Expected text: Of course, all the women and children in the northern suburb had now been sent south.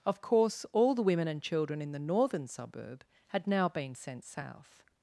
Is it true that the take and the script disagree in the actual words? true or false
false